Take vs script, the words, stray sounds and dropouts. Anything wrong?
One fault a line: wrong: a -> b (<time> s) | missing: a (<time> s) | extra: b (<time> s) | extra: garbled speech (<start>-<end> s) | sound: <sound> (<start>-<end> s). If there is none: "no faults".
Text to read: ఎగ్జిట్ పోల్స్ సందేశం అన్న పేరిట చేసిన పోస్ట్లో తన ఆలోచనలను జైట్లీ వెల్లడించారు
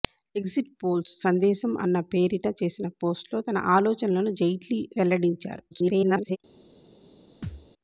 extra: garbled speech (5.7-6.4 s)
sound: thud (7.4-7.7 s)